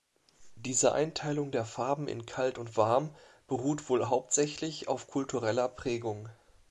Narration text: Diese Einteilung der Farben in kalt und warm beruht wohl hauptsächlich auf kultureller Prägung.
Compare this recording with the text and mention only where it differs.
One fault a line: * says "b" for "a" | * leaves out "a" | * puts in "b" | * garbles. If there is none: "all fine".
all fine